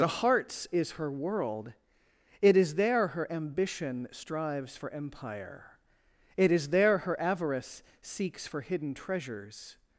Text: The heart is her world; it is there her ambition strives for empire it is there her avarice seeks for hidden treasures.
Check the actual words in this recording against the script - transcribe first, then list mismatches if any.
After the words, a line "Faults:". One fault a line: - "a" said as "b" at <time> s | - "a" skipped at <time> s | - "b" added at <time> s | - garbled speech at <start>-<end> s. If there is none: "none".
The hearts is her world; it is there her ambition strives for empire it is there her avarice seeks for hidden treasures.
Faults:
- "heart" said as "hearts" at 0.1 s